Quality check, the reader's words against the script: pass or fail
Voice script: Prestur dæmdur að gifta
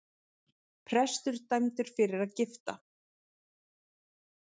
fail